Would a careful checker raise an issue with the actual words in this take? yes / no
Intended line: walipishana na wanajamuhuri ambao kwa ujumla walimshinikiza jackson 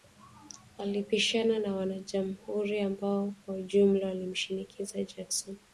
no